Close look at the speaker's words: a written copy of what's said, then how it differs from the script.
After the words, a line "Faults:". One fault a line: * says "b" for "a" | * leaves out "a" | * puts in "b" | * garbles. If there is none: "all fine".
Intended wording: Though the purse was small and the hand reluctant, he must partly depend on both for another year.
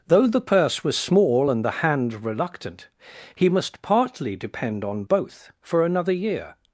Though the purse was small and the hand reluctant, he must partly depend on both for another year.
Faults:
all fine